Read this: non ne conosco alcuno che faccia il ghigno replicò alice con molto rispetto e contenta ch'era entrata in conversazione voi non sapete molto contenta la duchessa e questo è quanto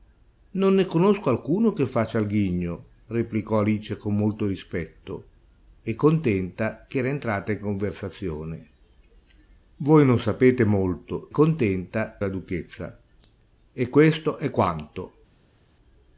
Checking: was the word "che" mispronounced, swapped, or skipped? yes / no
no